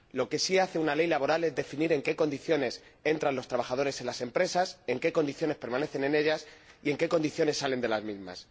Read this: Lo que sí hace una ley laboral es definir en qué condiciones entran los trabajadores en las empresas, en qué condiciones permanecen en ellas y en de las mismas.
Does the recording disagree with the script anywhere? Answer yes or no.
yes